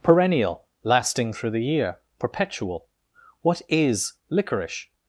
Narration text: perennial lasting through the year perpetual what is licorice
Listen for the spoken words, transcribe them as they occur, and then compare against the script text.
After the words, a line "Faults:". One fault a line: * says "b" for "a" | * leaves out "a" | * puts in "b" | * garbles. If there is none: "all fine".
perennial lasting through the year perpetual what is licorice
Faults:
all fine